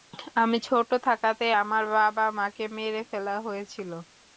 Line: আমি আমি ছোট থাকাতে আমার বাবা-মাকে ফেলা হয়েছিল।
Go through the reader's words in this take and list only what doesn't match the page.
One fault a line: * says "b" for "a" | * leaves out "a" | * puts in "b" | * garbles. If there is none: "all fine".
* leaves out "আমি"
* puts in "মেরে"